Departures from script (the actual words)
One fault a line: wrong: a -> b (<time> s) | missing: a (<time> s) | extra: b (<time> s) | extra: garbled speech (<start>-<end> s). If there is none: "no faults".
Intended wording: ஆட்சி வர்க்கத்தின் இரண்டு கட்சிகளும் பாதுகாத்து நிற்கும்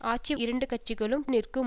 missing: வர்க்கத்தின் (0.3 s)
missing: பாதுகாத்து (1.3 s)